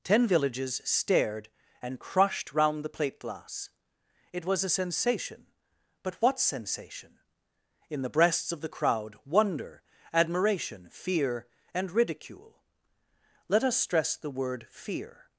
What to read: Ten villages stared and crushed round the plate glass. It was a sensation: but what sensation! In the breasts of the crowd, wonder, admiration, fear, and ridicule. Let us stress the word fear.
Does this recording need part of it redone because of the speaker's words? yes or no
no